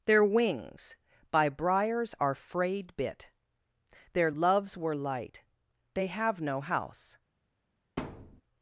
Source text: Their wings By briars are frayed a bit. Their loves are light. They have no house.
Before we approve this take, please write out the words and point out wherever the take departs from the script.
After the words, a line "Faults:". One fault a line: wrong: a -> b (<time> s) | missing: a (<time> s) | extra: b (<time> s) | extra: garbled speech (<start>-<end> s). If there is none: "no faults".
Their wings By briars are frayed bit. Their loves were light. They have no house.
Faults:
missing: a (3.0 s)
wrong: are -> were (4.8 s)